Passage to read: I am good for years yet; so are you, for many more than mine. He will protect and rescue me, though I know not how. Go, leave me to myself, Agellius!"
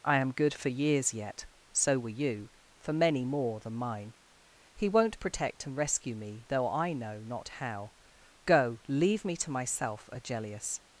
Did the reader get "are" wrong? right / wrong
wrong